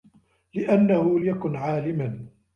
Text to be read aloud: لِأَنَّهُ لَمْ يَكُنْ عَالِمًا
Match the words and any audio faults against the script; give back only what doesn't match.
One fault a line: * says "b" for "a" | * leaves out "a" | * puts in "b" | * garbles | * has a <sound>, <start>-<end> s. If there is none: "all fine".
* leaves out "لَمْ"